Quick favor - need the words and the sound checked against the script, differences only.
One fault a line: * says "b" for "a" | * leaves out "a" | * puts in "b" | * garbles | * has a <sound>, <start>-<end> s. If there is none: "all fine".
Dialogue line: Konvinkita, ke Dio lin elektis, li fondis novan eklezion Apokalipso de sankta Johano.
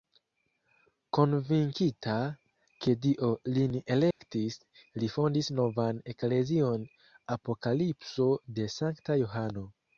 * has a dropout, 4.1-4.2 s